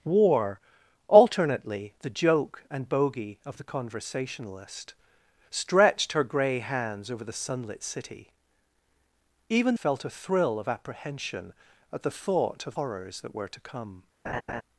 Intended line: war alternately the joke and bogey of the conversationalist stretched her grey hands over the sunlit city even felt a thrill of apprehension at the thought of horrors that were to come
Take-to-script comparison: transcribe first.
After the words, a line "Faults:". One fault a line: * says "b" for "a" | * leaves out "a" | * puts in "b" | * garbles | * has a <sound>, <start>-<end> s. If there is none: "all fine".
war alternately the joke and bogey of the conversationalist stretched her grey hands over the sunlit city even felt a thrill of apprehension at the thought of horrors that were to come
Faults:
* has a laugh, 14.2-14.6 s